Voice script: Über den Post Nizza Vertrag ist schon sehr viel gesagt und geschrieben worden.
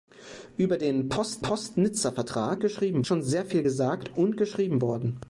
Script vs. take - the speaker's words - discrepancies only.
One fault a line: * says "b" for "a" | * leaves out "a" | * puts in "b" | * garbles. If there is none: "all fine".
* puts in "Post"
* says "geschrieben" for "ist"